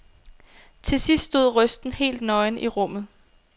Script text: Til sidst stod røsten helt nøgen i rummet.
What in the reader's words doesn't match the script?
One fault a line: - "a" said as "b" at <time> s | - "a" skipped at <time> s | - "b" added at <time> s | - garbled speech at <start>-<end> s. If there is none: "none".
none